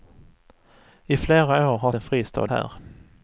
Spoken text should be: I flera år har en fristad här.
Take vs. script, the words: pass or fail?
pass